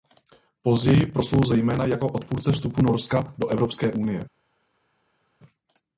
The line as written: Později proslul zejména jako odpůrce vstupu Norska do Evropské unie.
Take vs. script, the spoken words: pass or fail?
pass